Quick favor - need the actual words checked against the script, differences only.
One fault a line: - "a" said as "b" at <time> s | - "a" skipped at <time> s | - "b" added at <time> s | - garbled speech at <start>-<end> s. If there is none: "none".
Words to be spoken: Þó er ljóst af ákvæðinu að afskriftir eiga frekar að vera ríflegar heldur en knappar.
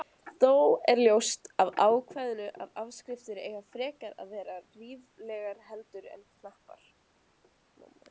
none